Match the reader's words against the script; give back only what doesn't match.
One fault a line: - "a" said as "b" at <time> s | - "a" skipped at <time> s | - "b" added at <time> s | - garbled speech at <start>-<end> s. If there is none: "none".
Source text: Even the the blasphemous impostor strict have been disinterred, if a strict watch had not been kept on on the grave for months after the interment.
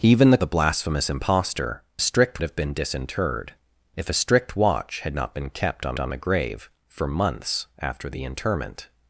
none